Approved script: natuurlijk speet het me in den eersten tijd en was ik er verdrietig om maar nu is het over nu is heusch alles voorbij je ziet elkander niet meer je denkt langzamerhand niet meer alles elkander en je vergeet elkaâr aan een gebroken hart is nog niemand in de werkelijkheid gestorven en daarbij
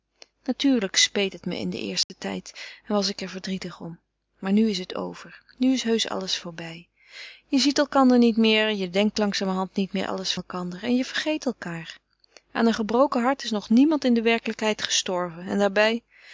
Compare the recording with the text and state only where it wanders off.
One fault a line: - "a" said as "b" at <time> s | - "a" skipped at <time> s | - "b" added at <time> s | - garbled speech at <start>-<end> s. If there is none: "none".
none